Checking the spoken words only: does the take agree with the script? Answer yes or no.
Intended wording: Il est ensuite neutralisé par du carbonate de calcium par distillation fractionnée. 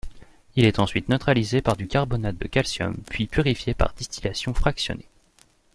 no